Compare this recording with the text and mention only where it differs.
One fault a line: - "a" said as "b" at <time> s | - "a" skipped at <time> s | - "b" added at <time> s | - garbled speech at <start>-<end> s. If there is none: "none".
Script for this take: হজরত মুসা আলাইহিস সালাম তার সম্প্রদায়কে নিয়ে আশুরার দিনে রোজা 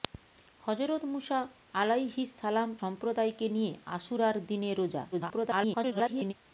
- "তার" skipped at 2.7 s
- garbled speech at 5.1-6.3 s